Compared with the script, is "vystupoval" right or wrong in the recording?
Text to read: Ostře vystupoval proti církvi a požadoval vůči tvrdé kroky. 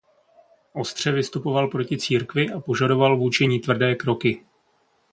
right